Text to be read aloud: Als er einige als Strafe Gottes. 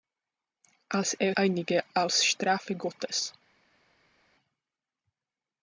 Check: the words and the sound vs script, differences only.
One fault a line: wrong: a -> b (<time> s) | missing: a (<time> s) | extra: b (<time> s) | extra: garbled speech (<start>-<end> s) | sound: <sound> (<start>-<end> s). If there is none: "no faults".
no faults